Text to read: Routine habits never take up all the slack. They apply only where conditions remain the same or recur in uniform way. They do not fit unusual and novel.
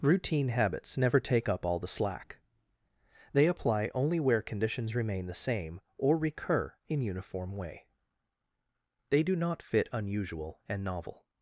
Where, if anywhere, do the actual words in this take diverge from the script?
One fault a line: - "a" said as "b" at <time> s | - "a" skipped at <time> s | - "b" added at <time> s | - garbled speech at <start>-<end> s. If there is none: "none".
none